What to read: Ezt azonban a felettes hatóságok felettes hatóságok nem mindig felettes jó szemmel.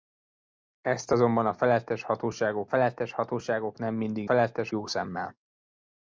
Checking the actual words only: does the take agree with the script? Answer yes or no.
yes